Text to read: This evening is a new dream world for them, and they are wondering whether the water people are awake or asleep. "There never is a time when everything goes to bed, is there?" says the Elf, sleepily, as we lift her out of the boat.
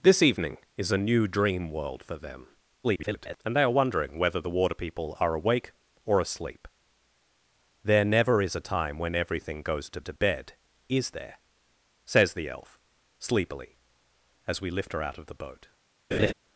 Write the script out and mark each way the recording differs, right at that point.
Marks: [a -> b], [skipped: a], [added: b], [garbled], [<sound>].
This evening is a new dream world for them, [garbled] and they are wondering whether the water people are awake or asleep. "There never is a time when everything goes to [added: to] bed, is there?" says the Elf, sleepily, as we lift her out of the boat. [laugh]